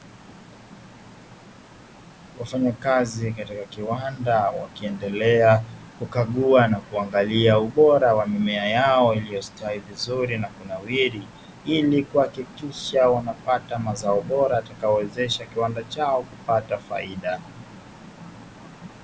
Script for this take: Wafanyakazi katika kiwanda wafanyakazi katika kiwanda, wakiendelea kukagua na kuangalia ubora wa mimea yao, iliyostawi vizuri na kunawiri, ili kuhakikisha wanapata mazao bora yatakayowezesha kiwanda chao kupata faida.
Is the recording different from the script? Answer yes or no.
yes